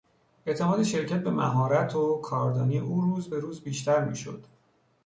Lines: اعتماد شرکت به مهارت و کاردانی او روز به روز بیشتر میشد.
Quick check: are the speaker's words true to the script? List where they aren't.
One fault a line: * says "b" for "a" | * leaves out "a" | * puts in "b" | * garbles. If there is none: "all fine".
all fine